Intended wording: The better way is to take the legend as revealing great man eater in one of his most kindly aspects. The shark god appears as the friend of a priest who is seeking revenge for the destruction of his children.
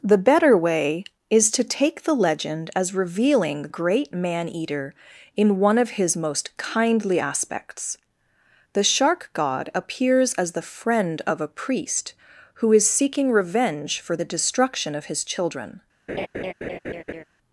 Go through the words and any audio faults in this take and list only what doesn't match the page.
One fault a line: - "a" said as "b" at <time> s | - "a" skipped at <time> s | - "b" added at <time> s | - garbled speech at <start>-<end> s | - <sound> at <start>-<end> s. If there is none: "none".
- laugh at 16.1-17.2 s